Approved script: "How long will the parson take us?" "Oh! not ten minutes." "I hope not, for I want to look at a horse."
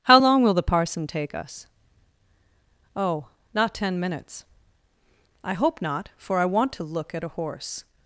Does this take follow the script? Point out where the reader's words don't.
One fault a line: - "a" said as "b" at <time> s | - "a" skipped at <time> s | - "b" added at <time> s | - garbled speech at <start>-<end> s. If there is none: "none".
none